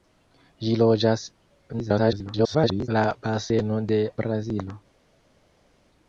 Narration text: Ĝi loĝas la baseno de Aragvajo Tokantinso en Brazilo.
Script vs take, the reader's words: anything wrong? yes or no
yes